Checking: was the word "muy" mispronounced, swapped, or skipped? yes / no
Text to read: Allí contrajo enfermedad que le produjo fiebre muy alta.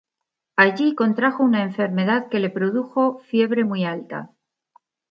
no